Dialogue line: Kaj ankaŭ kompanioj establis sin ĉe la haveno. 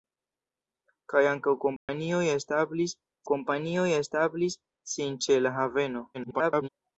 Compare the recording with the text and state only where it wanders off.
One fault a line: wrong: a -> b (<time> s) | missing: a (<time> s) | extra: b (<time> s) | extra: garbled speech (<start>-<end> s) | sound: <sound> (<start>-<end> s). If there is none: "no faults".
sound: dropout (1.8-1.9 s)
extra: kompanioj establis (3.3 s)
extra: garbled speech (6.1-6.7 s)